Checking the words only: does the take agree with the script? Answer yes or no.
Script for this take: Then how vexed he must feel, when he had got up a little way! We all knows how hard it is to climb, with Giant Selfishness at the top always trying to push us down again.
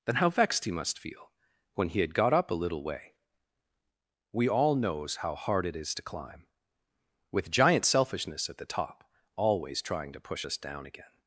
yes